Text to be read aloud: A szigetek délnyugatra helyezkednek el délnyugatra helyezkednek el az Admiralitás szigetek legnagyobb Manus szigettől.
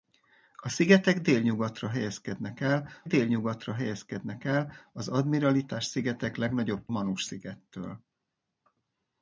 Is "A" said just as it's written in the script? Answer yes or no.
yes